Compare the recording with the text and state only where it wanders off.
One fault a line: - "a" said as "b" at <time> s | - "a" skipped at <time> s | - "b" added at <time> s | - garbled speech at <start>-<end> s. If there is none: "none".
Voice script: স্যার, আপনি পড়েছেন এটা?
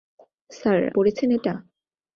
- "আপনি" skipped at 0.8 s